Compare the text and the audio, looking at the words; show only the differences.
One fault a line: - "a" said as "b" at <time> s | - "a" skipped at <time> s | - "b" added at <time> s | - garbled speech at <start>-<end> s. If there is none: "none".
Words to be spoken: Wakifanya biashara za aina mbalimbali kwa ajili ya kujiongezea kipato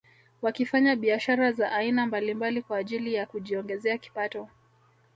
none